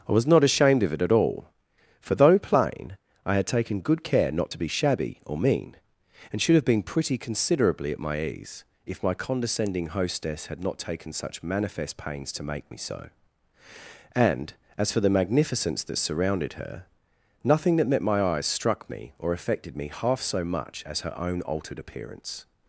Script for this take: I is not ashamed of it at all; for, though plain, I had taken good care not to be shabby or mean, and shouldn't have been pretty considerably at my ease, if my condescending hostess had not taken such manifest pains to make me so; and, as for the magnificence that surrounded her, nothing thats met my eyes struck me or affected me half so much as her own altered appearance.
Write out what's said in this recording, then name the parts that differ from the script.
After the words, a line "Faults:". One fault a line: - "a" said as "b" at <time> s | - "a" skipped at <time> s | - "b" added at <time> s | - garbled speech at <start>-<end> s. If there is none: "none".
I was not ashamed of it at all; for, though plain, I had taken good care not to be shabby or mean, and should have been pretty considerably at my ease, if my condescending hostess had not taken such manifest pains to make me so; and, as for the magnificence that surrounded her, nothing that met my eyes struck me or affected me half so much as her own altered appearance.
Faults:
- "is" said as "was" at 0.1 s
- "shouldn't" said as "should" at 6.4 s
- "thats" said as "that" at 17.8 s